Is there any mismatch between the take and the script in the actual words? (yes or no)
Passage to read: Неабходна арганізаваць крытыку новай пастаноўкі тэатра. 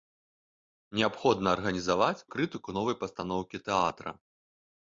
no